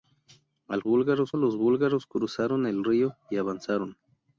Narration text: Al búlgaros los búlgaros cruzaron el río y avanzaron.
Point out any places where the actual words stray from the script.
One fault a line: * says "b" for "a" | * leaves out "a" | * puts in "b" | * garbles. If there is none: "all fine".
all fine